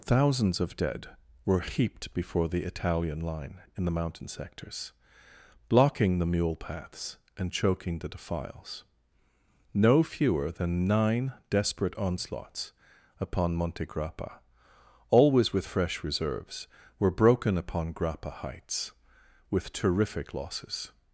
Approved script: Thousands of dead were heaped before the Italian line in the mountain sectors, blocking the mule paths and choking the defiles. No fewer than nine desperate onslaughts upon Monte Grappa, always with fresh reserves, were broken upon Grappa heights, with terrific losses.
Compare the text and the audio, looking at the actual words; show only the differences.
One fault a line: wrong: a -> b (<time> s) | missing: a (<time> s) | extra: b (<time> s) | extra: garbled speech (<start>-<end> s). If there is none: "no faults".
no faults